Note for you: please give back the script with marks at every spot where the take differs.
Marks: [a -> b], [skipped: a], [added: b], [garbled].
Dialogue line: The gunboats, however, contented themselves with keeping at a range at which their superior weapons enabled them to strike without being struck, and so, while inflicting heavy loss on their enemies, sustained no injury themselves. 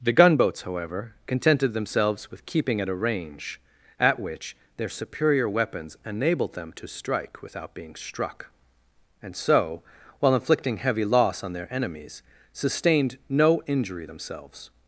The gunboats, however, contented themselves with keeping at a range at which their superior weapons enabled them to strike without being struck, and so, while inflicting heavy loss on their enemies, sustained no injury themselves.